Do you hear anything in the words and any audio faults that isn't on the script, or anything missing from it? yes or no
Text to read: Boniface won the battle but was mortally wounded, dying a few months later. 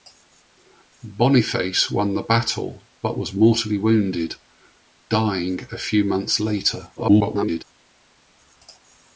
yes